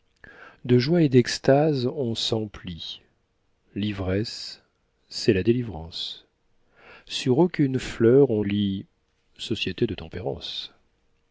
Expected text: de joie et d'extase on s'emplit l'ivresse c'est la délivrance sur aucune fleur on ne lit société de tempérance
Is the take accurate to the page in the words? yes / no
no